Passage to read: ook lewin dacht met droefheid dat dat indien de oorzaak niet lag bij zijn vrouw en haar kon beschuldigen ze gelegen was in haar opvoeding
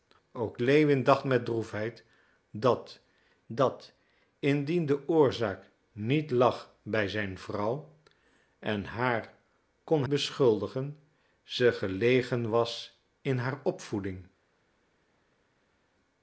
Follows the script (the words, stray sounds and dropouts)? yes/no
yes